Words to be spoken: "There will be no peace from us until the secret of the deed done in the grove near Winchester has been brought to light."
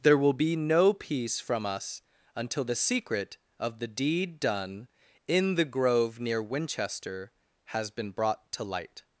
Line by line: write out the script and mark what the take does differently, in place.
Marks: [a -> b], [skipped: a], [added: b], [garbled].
"There will be no peace from us until the secret of the deed done in the grove near Winchester has been brought to light."